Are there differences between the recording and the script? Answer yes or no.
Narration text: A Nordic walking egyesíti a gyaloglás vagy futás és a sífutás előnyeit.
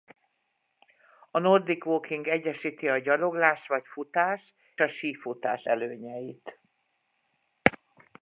yes